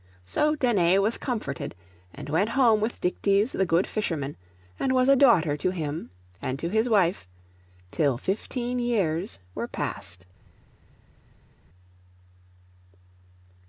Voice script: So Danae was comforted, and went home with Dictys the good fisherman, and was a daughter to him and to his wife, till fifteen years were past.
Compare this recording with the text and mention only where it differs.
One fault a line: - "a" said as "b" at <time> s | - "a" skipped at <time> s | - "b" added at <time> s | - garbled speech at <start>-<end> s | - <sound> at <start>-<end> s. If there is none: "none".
none